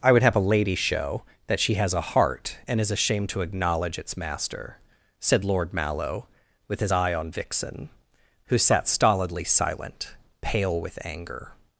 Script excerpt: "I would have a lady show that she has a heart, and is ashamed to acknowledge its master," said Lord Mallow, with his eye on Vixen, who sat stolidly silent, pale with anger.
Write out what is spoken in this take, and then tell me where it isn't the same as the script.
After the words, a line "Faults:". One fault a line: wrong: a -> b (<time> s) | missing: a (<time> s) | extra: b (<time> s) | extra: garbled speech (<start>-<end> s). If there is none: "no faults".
"I would have a lady show that she has a heart, and is ashamed to acknowledge its master," said Lord Mallow, with his eye on Vixen, who sat stolidly silent, pale with anger.
Faults:
no faults